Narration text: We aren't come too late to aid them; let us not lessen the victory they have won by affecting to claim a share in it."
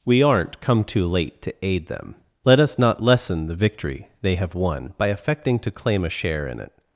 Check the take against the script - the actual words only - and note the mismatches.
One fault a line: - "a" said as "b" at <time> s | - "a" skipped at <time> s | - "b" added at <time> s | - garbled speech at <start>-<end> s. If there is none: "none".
none